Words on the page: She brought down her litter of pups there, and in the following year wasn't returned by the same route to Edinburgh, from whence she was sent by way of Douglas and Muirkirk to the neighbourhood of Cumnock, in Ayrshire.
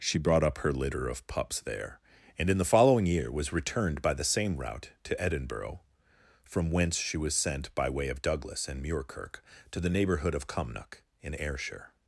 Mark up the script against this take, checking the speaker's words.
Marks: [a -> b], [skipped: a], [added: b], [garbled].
She brought [down -> up] her litter of pups there, and in the following year [wasn't -> was] returned by the same route to Edinburgh, from whence she was sent by way of Douglas and Muirkirk to the neighbourhood of Cumnock, in Ayrshire.